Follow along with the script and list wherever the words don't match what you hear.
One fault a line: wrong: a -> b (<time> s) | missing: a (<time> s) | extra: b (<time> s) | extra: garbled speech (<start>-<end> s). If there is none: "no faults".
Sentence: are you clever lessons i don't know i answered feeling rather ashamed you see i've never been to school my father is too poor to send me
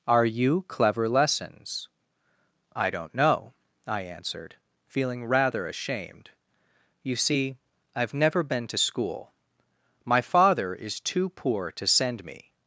no faults